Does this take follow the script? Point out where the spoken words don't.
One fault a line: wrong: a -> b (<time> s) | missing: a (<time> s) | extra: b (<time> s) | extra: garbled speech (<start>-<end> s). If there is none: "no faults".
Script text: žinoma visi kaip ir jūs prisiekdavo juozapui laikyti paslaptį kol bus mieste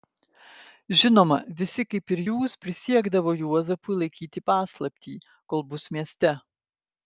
no faults